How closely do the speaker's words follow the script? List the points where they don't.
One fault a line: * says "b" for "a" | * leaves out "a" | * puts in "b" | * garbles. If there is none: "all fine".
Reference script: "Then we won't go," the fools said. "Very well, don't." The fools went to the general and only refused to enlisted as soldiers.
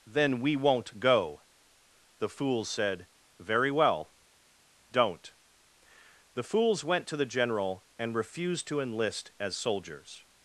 * leaves out "only"
* says "enlist" for "enlisted"